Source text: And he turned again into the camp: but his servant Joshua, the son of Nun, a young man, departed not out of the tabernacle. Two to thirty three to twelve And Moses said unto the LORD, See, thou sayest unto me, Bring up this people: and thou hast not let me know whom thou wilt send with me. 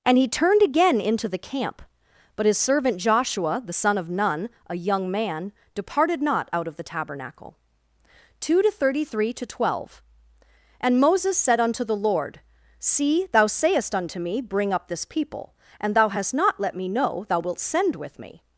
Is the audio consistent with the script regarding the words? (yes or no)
no